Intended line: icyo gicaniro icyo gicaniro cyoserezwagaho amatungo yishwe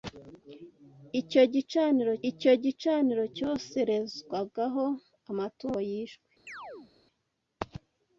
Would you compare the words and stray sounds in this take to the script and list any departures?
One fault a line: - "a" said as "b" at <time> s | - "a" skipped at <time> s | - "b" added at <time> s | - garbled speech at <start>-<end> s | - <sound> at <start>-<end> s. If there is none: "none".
- chirp at 6.5-6.9 s